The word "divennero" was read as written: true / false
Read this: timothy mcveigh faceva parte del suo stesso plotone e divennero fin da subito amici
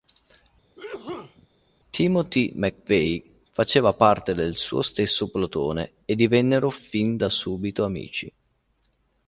true